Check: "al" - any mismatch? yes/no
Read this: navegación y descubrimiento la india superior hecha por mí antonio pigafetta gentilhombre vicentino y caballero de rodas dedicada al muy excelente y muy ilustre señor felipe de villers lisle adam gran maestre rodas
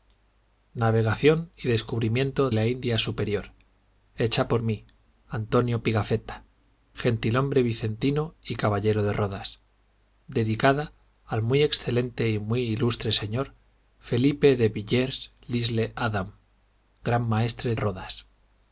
no